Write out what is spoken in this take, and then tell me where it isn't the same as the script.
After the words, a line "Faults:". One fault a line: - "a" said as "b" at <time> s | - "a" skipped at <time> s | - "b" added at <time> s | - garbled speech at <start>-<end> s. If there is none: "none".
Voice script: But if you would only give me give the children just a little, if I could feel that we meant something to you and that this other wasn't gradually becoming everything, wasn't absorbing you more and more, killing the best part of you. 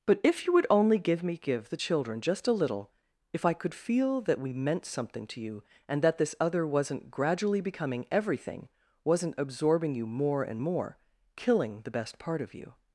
But if you would only give me give the children just a little, if I could feel that we meant something to you and that this other wasn't gradually becoming everything, wasn't absorbing you more and more, killing the best part of you.
Faults:
none